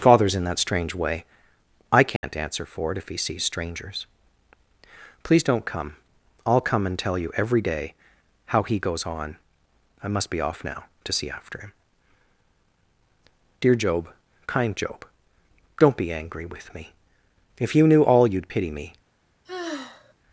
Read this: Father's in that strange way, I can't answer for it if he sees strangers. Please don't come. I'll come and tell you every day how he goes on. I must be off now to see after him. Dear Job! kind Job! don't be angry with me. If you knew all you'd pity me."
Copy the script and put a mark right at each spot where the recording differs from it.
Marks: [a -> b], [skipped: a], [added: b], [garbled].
Father's in that strange way, I can't answer for it if he sees strangers. Please don't come. I'll come and tell you every day how he goes on. I must be off now to see after him. Dear Job! kind Job! don't be angry with me. If you knew all you'd pity me."